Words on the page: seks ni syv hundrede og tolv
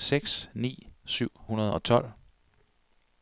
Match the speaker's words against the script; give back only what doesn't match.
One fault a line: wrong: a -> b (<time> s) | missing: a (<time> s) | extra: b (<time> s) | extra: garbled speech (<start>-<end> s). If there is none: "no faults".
no faults